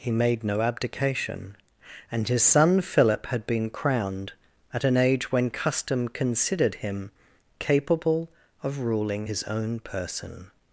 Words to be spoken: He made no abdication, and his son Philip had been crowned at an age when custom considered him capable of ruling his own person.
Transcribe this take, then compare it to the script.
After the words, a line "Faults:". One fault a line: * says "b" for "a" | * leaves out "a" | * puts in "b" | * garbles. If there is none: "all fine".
He made no abdication, and his son Philip had been crowned at an age when custom considered him capable of ruling his own person.
Faults:
all fine